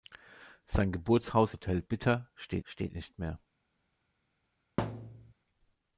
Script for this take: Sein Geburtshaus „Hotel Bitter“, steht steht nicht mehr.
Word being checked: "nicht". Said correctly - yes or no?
yes